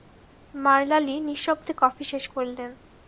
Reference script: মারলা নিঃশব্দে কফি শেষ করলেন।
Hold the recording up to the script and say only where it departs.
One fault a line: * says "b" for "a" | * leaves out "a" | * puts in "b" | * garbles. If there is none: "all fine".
* puts in "লি"